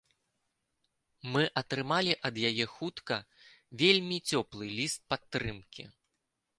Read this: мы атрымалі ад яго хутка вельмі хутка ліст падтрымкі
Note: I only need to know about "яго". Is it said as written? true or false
false